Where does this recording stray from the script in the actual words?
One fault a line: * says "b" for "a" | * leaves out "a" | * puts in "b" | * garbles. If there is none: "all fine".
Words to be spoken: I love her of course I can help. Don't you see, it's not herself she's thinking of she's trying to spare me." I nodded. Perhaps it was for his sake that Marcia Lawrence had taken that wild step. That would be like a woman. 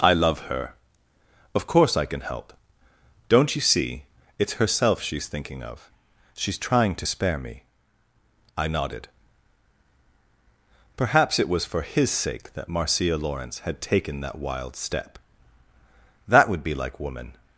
* leaves out "not"
* leaves out "a"